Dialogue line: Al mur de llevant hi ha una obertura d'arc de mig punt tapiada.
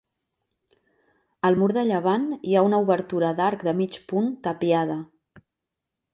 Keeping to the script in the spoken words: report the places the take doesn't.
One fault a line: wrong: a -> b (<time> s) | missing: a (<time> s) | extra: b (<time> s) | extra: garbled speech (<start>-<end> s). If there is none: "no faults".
no faults